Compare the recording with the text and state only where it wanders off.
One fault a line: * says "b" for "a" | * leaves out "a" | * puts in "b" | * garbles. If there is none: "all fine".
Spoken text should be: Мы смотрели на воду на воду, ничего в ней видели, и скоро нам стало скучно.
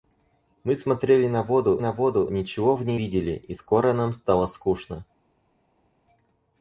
all fine